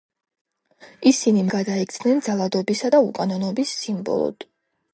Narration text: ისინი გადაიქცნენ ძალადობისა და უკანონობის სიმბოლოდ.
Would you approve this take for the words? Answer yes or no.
yes